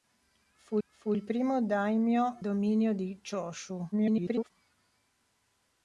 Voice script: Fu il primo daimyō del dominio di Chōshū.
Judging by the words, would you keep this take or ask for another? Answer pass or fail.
fail